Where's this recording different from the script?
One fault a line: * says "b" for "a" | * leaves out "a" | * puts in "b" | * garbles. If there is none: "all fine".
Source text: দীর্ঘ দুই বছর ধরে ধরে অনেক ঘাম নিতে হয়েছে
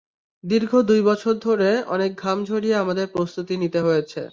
* leaves out "ধরে"
* puts in "ঝরিয়ে আমাদের প্রস্তুতি"